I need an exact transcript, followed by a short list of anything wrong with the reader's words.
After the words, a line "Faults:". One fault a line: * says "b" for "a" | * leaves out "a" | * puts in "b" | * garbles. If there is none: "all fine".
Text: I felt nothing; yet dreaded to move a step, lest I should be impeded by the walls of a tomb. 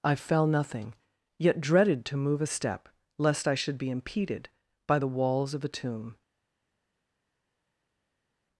I fell nothing; yet dreaded to move a step, lest I should be impeded by the walls of a tomb.
Faults:
* says "fell" for "felt"